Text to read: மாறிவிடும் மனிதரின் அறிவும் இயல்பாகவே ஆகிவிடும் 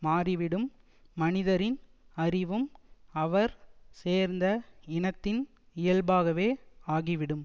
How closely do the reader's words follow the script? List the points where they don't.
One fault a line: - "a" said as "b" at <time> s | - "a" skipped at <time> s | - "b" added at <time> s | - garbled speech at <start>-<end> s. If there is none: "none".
- "அவர் சேர்ந்த இனத்தின்" added at 3.1 s